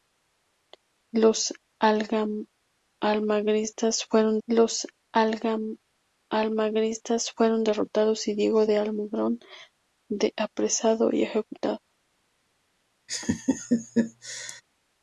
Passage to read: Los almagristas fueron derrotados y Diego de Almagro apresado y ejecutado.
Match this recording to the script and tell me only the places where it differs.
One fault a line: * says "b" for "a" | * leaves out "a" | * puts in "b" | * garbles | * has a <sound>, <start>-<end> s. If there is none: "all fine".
* puts in "los almagristas fueron"
* has a laugh, 13.1-14.6 s